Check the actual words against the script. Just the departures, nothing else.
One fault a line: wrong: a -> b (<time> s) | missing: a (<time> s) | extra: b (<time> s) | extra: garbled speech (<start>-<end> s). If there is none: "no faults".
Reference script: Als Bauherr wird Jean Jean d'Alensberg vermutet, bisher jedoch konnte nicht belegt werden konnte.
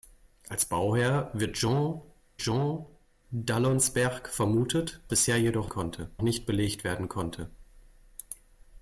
no faults